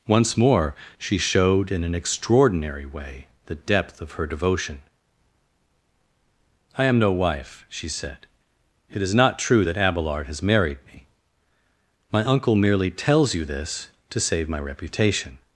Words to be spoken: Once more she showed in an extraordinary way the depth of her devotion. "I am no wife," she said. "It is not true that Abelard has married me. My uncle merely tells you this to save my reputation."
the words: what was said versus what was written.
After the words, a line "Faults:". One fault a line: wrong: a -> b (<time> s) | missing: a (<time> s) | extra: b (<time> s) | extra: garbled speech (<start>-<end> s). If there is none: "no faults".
Once more she showed in an extraordinary way the depth of her devotion. "I am no wife," she said. "It is not true that Abelard has married me. My uncle merely tells you this to save my reputation."
Faults:
no faults